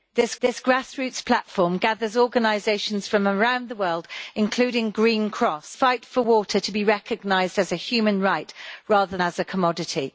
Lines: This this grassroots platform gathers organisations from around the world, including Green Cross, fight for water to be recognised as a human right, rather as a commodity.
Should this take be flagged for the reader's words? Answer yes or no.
no